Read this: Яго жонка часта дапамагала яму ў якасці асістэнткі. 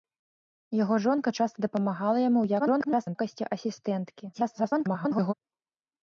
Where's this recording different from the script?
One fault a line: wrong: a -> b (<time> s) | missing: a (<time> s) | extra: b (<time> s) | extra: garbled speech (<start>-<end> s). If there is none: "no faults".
extra: garbled speech (2.6-3.2 s)
extra: garbled speech (4.3-5.3 s)